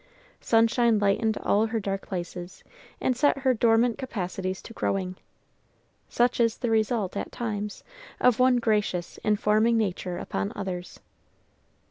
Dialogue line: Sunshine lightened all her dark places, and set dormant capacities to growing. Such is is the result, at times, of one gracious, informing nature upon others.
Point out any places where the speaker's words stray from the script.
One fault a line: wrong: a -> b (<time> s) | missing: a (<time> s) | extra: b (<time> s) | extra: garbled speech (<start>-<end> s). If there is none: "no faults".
extra: her (3.4 s)
missing: is (6.6 s)